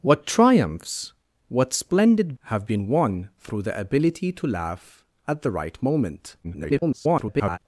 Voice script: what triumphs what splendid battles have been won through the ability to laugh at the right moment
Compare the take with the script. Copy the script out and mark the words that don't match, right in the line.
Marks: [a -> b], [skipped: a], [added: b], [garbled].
what triumphs what splendid [skipped: battles] have been won through the ability to laugh at the right moment [garbled]